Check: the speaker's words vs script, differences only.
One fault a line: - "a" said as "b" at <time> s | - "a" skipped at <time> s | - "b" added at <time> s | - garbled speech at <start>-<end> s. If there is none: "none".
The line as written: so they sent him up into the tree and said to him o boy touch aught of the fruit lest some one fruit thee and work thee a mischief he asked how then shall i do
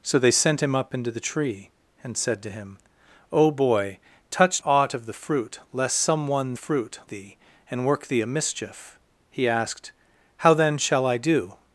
none